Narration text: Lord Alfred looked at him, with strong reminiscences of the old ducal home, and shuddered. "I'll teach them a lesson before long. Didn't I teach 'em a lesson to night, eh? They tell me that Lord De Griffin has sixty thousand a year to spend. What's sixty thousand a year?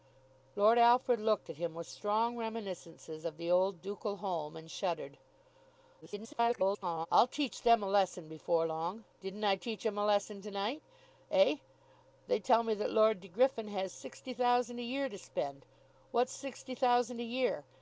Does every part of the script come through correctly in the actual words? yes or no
no